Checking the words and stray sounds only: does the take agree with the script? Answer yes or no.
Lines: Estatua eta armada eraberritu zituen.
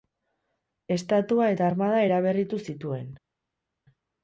yes